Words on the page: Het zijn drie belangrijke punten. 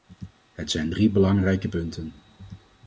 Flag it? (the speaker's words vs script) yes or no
no